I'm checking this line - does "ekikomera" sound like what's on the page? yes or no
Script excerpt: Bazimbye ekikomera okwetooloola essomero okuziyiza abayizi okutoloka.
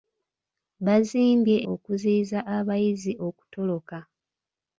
no